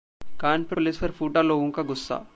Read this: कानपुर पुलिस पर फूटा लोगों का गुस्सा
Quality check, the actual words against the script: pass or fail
pass